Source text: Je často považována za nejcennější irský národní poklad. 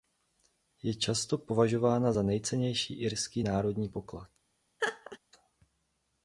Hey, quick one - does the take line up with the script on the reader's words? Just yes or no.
yes